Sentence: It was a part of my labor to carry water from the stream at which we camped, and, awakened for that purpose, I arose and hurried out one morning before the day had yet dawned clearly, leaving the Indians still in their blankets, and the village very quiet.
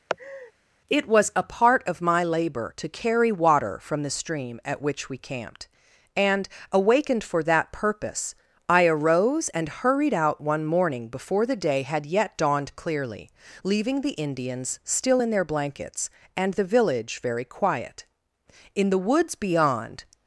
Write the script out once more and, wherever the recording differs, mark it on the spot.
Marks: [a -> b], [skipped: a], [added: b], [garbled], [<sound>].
[laugh] It was a part of my labor to carry water from the stream at which we camped, and, awakened for that purpose, I arose and hurried out one morning before the day had yet dawned clearly, leaving the Indians still in their blankets, and the village very quiet. [added: In the woods beyond]